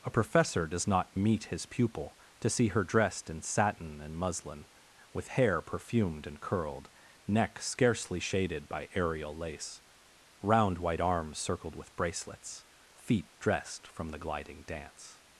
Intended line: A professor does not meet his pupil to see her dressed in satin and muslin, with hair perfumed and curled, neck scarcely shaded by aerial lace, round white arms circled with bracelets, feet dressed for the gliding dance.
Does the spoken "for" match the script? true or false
false